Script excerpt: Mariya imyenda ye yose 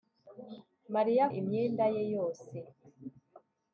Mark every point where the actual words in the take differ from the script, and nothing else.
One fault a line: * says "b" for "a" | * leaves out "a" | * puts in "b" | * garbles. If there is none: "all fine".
all fine